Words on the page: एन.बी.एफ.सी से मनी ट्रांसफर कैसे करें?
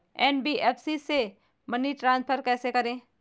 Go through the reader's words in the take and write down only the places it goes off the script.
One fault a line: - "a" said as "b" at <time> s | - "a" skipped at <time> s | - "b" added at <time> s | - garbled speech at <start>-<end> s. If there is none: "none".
none